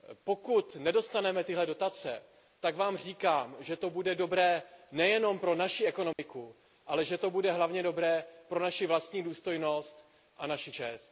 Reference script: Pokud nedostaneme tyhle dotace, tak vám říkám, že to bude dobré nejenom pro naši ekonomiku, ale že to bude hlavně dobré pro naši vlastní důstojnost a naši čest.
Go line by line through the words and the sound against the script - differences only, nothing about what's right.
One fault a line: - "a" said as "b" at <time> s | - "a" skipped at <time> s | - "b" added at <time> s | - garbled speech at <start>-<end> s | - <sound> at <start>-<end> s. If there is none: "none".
- dropout at 6.1-6.2 s